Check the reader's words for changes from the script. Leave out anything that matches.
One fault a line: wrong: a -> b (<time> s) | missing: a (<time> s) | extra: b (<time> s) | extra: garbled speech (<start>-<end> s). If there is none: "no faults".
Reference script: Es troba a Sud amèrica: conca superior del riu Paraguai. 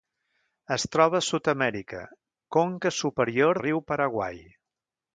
missing: del (3.6 s)